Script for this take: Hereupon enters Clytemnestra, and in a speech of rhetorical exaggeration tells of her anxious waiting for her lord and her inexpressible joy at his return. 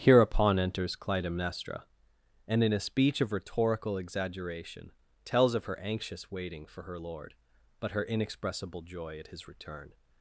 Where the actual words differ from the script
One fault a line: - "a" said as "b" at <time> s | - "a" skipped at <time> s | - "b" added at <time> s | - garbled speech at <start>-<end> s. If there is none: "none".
- "and" said as "but" at 7.8 s